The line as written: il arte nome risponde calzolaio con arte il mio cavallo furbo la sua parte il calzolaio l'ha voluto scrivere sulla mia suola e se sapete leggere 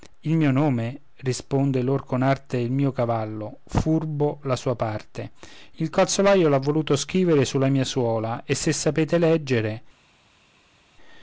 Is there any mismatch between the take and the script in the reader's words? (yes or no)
yes